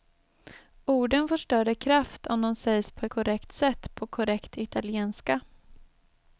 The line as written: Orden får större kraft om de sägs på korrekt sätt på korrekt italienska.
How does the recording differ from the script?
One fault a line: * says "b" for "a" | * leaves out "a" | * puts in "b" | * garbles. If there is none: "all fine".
all fine